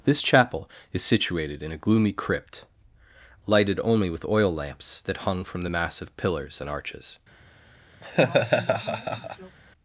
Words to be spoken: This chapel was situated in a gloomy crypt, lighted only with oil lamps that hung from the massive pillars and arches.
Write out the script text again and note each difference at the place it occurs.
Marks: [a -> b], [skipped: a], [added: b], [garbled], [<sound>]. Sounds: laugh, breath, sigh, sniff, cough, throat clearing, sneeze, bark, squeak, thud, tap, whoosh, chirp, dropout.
This chapel [was -> is] situated in a gloomy crypt, lighted only with oil lamps that hung from the massive pillars and arches. [laugh]